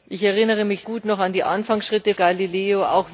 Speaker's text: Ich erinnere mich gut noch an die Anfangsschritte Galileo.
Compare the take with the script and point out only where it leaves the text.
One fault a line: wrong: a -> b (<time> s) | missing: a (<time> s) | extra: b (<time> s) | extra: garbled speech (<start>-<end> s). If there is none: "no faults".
no faults